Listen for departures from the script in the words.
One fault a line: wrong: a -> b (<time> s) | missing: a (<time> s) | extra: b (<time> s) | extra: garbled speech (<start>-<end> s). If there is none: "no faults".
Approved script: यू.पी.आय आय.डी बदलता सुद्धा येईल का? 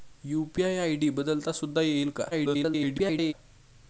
extra: garbled speech (2.3-3.3 s)